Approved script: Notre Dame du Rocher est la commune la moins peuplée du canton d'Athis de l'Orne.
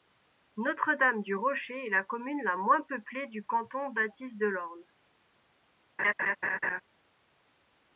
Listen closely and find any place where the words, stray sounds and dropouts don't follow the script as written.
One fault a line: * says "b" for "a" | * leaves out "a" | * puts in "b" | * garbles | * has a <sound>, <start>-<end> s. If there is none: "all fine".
* has a laugh, 6.0-6.8 s